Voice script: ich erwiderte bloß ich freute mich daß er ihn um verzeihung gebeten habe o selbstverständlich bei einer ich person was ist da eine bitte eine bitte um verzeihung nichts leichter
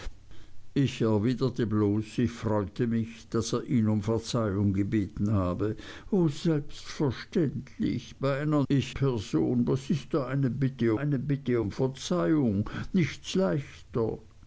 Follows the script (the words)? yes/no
yes